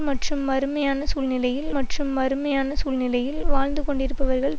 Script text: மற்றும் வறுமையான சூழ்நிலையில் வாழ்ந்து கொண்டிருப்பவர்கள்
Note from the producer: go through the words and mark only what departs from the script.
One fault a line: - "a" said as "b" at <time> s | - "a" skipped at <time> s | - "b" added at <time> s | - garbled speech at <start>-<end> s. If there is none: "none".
- "மற்றும் வறுமையான சூழ்நிலையில்" added at 1.7 s